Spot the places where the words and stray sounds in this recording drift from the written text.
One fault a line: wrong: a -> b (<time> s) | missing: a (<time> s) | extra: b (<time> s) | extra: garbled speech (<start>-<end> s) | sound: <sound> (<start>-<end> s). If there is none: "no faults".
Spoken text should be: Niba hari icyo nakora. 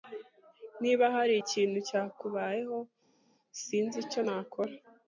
extra: ikintu cyakubayeho sinzi (1.4 s)